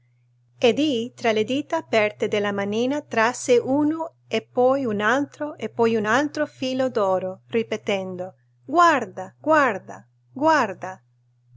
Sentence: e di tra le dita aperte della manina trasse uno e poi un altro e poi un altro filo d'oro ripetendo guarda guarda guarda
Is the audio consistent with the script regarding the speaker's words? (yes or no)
yes